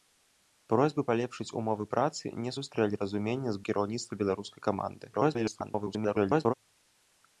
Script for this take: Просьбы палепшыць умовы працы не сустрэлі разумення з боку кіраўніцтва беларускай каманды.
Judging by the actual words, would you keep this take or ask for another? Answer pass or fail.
fail